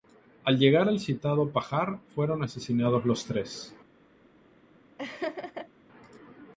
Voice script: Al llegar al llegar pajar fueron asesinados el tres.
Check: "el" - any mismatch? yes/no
yes